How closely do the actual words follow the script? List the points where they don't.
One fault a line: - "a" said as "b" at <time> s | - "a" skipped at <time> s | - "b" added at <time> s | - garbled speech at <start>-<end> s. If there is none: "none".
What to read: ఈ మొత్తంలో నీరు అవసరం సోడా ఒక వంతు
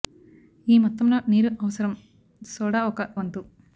none